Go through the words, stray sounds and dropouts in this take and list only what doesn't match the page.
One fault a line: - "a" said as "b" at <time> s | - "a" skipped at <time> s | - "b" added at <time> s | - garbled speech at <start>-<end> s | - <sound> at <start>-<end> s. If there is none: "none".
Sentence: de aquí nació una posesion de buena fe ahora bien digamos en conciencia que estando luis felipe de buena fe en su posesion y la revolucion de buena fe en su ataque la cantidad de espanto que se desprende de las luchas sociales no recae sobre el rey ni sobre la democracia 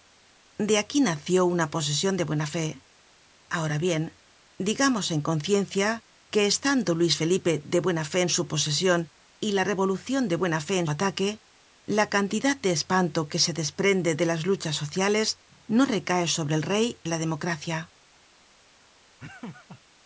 - "su" skipped at 10.9 s
- "ni sobre" skipped at 17.0 s
- laugh at 19.2-19.8 s